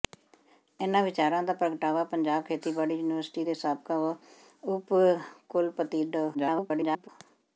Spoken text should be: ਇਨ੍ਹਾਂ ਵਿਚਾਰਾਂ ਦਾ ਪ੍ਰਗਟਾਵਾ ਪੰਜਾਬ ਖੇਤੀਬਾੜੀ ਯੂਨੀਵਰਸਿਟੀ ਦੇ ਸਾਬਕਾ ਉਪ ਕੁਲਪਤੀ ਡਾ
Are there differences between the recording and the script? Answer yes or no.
yes